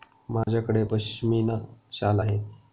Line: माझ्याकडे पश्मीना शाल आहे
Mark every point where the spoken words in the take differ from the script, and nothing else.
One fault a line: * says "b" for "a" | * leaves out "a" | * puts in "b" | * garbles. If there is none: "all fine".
all fine